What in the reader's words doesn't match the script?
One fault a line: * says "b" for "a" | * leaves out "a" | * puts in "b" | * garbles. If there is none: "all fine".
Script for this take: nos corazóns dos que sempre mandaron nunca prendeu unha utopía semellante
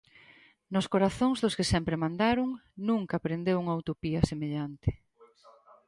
all fine